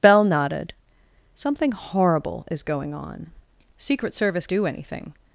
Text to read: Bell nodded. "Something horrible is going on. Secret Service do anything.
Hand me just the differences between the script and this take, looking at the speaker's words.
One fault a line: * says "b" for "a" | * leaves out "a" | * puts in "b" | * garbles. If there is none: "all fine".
all fine